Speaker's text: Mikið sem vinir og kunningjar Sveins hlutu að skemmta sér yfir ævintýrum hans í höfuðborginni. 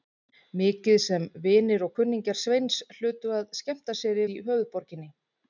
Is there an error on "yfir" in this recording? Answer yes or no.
yes